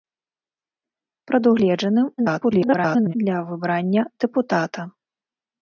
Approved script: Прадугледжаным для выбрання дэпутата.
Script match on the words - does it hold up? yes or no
no